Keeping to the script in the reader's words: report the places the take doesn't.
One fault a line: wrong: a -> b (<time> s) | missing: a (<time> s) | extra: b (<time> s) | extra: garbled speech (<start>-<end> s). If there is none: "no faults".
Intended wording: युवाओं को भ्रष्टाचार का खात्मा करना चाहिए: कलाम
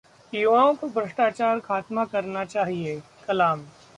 missing: का (1.6 s)